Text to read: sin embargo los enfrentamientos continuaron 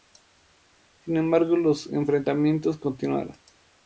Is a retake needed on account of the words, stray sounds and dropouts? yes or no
no